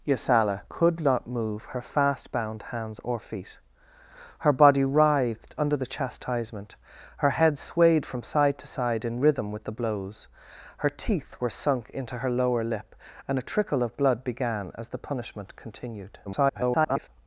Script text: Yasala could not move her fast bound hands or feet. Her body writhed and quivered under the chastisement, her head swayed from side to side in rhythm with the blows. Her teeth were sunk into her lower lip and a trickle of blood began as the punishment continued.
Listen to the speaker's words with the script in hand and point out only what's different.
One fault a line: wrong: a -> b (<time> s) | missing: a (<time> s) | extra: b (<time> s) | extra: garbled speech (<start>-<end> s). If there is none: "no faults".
missing: and quivered (5.5 s)
extra: garbled speech (16.2-17.1 s)